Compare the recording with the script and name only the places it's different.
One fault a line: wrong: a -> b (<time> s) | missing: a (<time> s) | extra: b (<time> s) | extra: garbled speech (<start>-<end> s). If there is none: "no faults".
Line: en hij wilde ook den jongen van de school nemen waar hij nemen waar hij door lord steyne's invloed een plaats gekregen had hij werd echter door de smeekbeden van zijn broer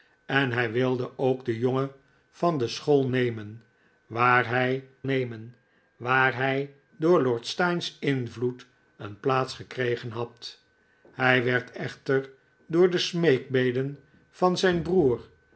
no faults